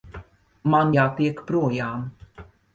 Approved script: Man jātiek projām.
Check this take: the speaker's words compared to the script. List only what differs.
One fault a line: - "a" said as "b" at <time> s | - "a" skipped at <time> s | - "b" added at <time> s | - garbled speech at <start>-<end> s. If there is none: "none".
none